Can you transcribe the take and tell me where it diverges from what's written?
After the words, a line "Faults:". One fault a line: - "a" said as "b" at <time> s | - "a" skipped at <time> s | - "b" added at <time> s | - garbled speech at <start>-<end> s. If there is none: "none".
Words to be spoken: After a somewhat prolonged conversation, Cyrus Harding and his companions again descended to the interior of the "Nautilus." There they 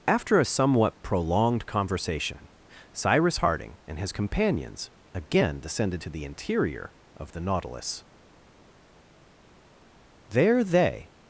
After a somewhat prolonged conversation, Cyrus Harding and his companions again descended to the interior of the "Nautilus." There they
Faults:
none